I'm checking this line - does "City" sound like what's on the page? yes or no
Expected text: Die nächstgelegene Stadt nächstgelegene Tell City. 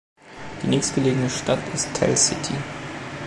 yes